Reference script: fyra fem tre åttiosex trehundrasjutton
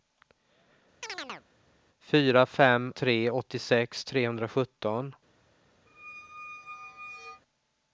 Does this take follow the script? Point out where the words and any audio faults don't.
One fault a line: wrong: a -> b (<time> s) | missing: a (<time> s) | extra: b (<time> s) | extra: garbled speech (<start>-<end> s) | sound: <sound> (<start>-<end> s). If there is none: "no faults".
sound: chirp (1.0-1.5 s)
sound: squeak (5.9-7.4 s)